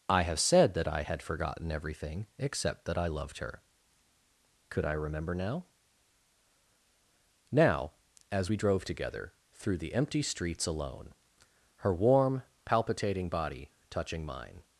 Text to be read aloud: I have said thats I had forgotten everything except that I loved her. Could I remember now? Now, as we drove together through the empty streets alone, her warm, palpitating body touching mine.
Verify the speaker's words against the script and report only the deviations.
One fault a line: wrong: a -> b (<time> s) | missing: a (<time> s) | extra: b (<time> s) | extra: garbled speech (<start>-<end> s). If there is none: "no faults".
wrong: thats -> that (0.7 s)